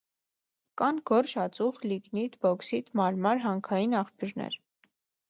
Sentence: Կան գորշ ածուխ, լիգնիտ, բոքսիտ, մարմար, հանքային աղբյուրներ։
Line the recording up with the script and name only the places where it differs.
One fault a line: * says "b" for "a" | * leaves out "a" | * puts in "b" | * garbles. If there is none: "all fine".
all fine